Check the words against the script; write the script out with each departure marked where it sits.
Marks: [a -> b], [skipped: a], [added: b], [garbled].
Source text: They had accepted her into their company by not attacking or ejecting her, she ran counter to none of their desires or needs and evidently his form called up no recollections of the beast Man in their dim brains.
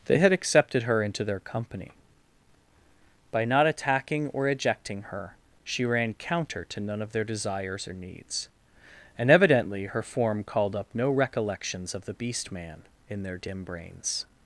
They had accepted her into their company by not attacking or ejecting her, she ran counter to none of their desires or needs and evidently [his -> her] form called up no recollections of the beast Man in their dim brains.